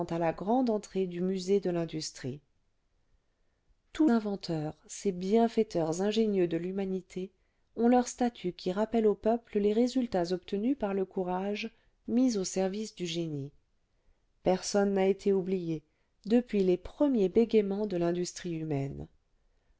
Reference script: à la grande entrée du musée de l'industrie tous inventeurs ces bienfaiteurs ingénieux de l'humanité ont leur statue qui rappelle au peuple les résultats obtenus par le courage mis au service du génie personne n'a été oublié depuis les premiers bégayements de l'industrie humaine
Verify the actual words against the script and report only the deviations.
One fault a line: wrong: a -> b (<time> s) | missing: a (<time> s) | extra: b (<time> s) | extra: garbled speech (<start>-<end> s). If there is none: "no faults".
no faults